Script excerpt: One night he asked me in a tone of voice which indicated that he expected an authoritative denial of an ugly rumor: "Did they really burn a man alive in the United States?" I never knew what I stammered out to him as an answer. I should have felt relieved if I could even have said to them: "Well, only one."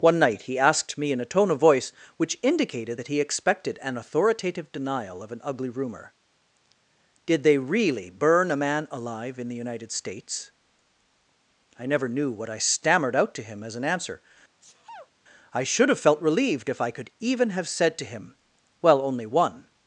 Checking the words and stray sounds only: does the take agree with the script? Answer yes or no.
no